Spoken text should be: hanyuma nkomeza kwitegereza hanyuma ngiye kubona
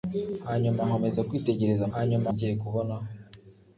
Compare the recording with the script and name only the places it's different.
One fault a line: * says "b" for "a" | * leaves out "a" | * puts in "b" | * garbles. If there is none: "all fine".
all fine